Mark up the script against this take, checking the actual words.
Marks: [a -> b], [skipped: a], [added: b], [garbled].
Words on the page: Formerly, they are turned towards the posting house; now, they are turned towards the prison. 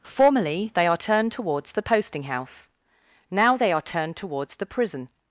Formerly, they are turned towards the posting house; now, they are turned towards the prison.